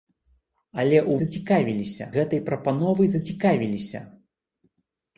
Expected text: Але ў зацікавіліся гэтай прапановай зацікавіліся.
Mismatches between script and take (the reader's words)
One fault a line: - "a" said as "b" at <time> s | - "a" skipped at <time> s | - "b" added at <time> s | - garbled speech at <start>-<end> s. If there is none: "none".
none